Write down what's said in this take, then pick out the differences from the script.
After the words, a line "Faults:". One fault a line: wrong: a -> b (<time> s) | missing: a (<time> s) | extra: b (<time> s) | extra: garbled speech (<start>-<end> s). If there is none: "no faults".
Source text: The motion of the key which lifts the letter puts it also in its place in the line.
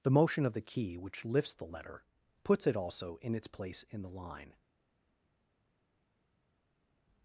The motion of the key which lifts the letter puts it also in its place in the line.
Faults:
no faults